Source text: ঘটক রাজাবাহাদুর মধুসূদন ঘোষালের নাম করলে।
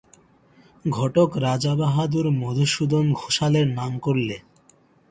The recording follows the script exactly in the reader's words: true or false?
true